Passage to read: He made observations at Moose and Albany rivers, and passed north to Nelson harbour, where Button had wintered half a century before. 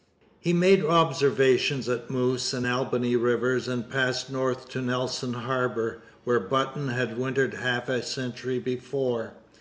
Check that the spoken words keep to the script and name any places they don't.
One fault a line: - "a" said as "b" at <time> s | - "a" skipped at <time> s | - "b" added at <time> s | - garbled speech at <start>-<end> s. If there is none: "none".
none